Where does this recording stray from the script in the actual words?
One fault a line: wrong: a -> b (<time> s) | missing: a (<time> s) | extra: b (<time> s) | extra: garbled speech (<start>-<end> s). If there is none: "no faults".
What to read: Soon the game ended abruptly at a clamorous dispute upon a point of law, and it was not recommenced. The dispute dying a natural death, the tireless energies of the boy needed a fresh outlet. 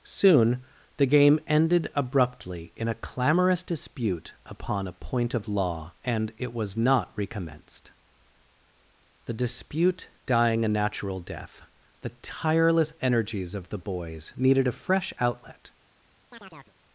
wrong: at -> in (2.8 s)
wrong: boy -> boys (13.8 s)